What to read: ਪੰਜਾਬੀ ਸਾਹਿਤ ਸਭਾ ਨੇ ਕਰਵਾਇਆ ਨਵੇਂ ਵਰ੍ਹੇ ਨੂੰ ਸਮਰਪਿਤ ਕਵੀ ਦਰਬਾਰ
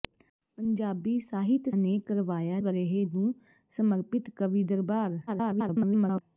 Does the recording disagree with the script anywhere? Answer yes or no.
yes